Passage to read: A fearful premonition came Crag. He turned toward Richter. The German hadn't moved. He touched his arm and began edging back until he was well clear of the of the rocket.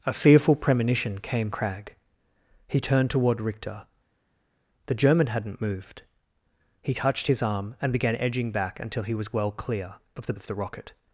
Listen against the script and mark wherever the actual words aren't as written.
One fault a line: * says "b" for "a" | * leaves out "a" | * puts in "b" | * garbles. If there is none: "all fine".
all fine